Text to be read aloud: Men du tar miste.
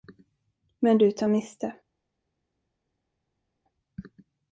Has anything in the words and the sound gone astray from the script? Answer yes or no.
no